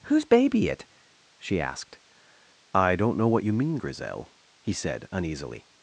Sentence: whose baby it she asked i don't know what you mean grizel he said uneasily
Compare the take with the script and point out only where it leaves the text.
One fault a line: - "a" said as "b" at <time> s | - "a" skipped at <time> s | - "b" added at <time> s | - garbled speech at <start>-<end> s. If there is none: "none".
none